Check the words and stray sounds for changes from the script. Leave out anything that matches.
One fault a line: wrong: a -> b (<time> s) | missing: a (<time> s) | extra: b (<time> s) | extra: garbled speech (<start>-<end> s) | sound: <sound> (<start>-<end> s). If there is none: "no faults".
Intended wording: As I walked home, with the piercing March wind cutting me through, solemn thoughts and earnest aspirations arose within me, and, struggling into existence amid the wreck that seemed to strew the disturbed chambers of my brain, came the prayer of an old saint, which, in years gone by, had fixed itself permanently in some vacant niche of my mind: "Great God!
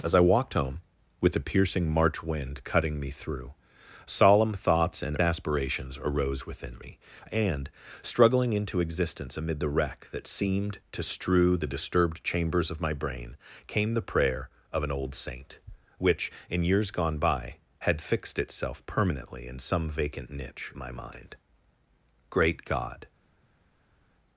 missing: earnest (5.2 s)
missing: of (20.7 s)